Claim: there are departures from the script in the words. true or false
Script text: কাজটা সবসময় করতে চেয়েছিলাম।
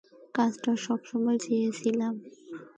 true